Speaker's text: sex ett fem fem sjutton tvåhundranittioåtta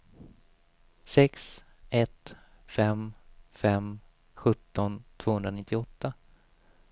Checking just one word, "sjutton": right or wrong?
right